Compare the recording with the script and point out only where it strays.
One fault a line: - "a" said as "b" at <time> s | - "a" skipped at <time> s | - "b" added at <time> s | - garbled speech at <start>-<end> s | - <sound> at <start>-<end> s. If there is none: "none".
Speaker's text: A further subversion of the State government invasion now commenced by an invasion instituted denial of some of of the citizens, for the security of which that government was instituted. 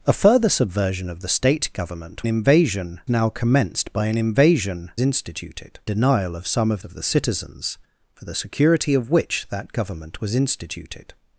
none